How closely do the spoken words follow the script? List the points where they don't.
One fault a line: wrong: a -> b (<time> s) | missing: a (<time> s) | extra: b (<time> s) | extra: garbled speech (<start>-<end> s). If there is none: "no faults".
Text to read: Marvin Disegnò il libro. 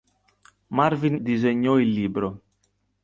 no faults